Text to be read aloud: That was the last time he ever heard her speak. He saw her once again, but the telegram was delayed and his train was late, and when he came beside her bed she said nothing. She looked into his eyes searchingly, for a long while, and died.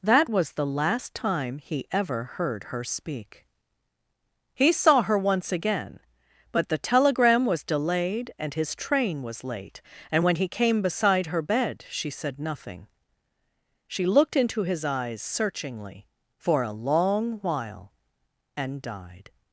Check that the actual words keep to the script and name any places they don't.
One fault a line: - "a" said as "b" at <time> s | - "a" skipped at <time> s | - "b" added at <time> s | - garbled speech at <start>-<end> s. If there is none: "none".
none